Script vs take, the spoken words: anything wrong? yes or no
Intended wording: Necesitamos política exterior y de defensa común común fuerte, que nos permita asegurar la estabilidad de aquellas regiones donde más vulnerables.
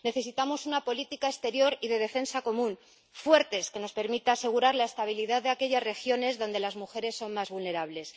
yes